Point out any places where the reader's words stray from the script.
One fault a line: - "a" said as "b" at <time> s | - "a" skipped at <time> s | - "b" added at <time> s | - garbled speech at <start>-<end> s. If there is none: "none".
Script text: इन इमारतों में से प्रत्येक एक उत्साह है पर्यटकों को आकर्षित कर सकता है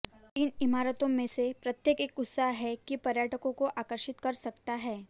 - "कि" added at 2.8 s